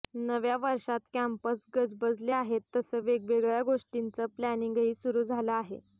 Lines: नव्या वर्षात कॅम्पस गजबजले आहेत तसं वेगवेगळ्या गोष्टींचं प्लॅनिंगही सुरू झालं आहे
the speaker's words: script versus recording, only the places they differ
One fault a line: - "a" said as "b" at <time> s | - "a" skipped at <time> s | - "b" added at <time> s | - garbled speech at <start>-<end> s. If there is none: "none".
none